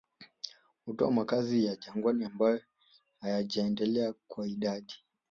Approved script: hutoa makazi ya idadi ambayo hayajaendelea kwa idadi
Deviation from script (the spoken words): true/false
true